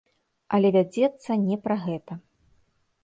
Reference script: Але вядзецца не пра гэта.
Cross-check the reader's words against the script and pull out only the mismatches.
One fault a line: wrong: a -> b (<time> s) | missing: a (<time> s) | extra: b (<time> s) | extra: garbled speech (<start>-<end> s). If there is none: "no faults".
no faults